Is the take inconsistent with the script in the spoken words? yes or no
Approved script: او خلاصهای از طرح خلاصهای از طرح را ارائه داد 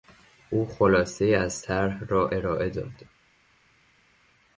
yes